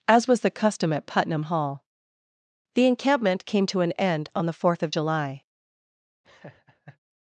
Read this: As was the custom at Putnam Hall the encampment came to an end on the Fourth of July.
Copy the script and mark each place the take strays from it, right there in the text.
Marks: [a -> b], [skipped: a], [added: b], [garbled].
As was the custom at Putnam Hall the encampment came to an end on the Fourth of July.